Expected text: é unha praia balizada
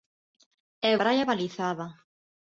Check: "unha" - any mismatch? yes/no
yes